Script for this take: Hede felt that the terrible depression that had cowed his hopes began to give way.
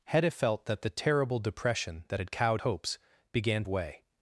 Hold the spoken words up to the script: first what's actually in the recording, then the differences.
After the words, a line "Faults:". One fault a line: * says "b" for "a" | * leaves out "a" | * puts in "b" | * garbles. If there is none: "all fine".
Hede felt that the terrible depression that had cowed hopes began way.
Faults:
* leaves out "his"
* leaves out "to give"